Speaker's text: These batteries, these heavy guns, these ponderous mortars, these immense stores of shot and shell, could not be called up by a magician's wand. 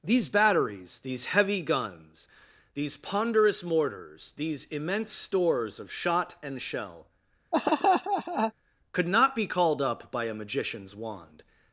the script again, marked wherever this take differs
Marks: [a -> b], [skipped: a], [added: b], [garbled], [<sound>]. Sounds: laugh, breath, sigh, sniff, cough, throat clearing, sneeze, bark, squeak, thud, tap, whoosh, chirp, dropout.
These batteries, these heavy guns, these ponderous mortars, these immense stores of shot and shell, [laugh] could not be called up by a magician's wand.